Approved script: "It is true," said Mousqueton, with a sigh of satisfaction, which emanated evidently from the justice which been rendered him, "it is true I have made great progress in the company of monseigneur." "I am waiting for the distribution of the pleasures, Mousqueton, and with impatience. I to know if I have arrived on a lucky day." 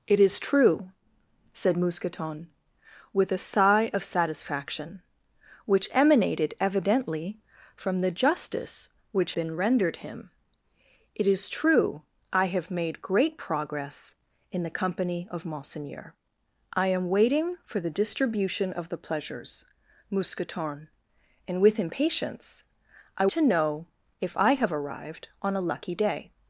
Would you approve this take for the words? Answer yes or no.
yes